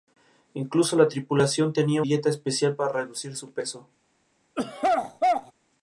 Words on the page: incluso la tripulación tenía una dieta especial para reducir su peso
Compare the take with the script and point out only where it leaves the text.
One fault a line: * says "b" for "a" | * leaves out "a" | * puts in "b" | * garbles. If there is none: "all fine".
* leaves out "una"